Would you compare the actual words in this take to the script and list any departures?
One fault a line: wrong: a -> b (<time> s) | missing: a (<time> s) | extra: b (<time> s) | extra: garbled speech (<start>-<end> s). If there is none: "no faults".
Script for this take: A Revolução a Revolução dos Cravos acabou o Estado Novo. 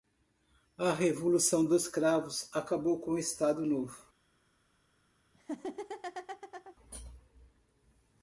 missing: a Revolução (1.6 s)
extra: com (3.0 s)